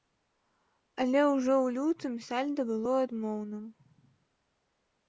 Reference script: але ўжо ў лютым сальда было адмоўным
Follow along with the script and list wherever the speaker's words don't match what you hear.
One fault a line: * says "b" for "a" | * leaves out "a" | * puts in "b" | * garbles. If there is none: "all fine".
all fine